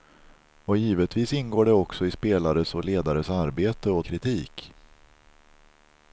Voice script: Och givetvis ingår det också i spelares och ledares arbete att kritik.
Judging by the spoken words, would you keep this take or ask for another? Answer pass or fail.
pass